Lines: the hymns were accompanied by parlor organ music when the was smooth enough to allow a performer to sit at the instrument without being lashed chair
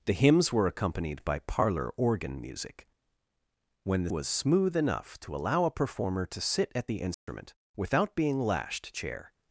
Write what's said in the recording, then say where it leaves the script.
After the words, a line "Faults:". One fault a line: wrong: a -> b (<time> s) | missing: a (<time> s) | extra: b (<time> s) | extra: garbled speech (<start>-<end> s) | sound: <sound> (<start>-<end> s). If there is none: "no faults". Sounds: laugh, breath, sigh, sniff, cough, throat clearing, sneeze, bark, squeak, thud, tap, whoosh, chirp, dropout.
the hymns were accompanied by parlor organ music when the was smooth enough to allow a performer to sit at the instrument without being lashed chair
Faults:
sound: dropout (7.1-7.3 s)